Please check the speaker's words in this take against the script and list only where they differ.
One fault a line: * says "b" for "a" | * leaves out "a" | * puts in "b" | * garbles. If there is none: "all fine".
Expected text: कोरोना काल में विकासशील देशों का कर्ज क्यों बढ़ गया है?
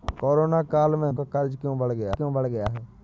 * says "का कर्ज क्यों बढ़ गया" for "विकासशील देशों का कर्ज"